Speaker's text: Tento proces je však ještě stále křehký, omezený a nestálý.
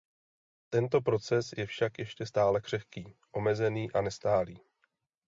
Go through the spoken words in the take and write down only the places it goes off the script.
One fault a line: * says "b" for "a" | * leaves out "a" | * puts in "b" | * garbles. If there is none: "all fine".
all fine